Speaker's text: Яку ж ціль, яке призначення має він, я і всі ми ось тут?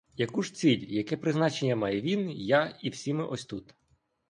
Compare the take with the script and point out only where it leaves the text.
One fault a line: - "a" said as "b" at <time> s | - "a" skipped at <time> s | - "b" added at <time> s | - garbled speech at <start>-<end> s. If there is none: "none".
none